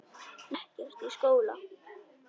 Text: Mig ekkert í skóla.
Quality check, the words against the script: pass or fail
pass